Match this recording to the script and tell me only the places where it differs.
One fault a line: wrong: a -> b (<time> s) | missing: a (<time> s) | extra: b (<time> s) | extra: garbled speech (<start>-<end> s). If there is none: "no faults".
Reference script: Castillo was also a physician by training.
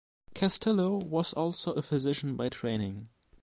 no faults